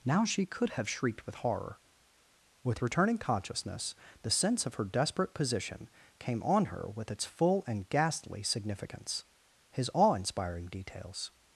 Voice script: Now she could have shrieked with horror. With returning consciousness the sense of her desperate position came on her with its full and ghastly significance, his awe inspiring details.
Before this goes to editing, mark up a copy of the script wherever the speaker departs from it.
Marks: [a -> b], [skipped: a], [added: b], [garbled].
Now she could have shrieked with horror. With returning consciousness the sense of her desperate position came on her with its full and ghastly significance, his awe inspiring details.